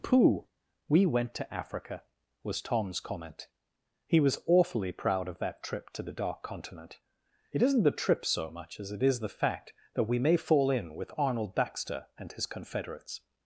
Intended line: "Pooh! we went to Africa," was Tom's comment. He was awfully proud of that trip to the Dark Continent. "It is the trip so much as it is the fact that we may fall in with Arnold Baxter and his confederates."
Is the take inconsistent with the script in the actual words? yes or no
yes